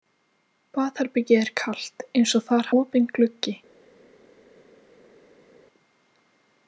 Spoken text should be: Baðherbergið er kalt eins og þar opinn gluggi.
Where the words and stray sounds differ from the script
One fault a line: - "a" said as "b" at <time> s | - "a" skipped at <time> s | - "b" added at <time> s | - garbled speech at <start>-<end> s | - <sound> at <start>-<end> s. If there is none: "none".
none